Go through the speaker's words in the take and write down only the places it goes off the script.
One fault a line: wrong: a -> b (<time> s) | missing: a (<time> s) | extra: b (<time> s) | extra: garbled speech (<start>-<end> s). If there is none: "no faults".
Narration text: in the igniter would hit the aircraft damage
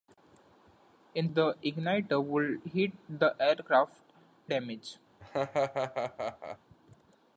no faults